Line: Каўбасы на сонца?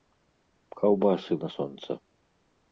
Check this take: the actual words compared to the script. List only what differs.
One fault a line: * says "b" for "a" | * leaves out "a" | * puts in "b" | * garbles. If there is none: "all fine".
all fine